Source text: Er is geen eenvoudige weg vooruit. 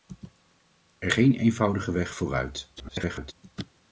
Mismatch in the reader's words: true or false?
true